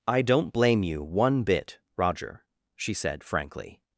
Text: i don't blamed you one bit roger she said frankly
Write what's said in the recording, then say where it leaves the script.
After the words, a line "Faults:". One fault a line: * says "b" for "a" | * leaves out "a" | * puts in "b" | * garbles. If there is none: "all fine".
i don't blame you one bit roger she said frankly
Faults:
* says "blame" for "blamed"